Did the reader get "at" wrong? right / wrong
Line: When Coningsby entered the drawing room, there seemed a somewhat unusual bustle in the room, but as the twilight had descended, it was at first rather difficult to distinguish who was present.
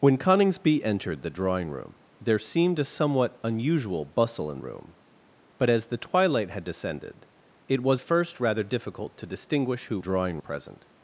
wrong